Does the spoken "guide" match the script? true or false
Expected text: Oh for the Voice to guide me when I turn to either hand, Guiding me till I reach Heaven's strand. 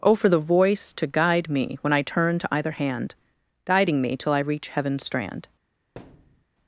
true